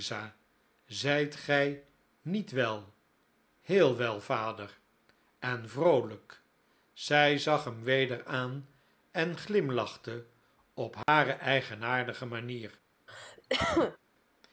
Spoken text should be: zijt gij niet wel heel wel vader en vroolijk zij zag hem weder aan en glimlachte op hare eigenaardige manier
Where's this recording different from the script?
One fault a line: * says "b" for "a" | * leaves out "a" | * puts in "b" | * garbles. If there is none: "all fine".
all fine